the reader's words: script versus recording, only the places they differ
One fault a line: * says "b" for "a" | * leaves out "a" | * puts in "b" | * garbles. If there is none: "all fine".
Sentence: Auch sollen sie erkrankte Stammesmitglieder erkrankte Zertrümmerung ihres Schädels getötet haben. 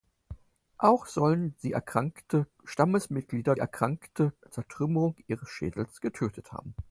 all fine